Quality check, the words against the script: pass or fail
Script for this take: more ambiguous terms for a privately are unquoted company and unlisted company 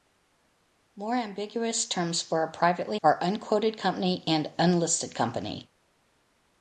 pass